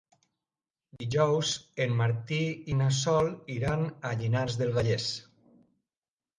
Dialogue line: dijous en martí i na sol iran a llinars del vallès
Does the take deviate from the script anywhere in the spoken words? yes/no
no